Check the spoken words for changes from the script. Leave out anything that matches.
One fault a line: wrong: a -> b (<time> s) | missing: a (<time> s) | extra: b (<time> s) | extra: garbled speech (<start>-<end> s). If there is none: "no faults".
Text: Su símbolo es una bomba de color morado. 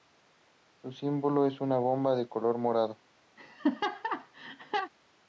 no faults